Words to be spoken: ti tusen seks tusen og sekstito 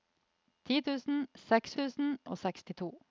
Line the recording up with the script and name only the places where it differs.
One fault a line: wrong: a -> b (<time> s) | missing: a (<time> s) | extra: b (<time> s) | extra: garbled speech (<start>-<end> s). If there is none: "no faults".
no faults